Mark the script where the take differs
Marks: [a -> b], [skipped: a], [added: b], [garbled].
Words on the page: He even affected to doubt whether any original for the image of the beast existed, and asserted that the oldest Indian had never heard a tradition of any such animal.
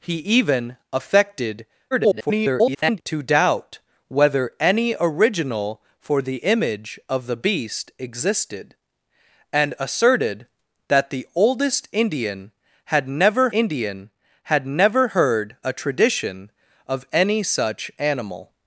He even affected [garbled] to doubt whether any original for the image of the beast existed, and asserted that the oldest Indian had never [added: Indian had never] heard a tradition of any such animal.